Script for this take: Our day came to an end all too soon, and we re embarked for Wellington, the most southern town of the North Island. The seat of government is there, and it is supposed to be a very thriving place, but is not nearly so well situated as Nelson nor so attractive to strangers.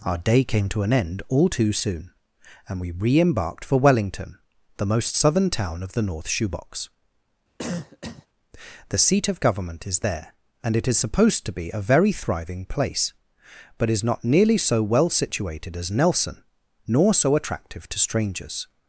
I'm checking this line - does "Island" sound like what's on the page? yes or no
no